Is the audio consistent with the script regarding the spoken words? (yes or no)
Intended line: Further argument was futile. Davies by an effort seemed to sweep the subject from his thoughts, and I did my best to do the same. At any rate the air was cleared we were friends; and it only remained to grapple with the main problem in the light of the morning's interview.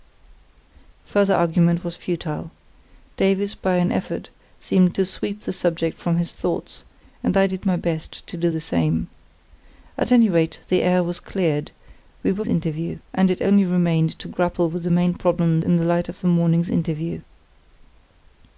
no